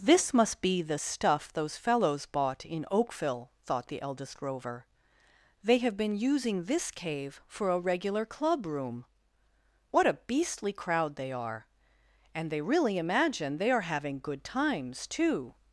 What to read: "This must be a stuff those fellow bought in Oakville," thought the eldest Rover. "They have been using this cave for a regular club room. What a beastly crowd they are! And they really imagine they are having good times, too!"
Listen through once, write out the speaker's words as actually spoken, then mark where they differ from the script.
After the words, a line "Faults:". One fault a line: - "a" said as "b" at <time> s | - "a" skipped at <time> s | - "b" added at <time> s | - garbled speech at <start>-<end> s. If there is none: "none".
"This must be the stuff those fellows bought in Oakville," thought the eldest Rover. "They have been using this cave for a regular club room. What a beastly crowd they are! And they really imagine they are having good times, too!"
Faults:
- "a" said as "the" at 0.8 s
- "fellow" said as "fellows" at 1.7 s